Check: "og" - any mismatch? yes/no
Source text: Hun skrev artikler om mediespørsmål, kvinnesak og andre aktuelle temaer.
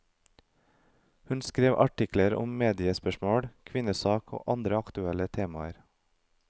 no